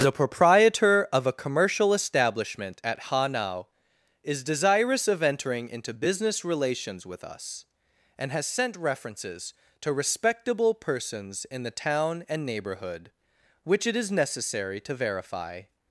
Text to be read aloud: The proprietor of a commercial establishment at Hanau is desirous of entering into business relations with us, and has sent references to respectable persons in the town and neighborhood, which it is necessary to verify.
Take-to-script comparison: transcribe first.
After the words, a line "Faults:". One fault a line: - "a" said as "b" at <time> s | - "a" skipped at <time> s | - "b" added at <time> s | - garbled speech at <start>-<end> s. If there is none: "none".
The proprietor of a commercial establishment at Hanau is desirous of entering into business relations with us, and has sent references to respectable persons in the town and neighborhood, which it is necessary to verify.
Faults:
none